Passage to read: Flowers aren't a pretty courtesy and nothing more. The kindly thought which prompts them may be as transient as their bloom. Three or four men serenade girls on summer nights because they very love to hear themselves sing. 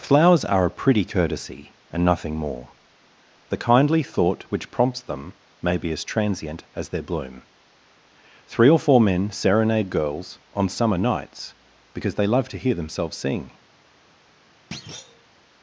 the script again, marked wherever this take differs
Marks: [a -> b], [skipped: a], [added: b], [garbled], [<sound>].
Flowers [aren't -> are] a pretty courtesy and nothing more. The kindly thought which prompts them may be as transient as their bloom. Three or four men serenade girls on summer nights because they [skipped: very] love to hear themselves sing. [thud]